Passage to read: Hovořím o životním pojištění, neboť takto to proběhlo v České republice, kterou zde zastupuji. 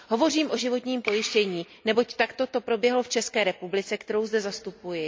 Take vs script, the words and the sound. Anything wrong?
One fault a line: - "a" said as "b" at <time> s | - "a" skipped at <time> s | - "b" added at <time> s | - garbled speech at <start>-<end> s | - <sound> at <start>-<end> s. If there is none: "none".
none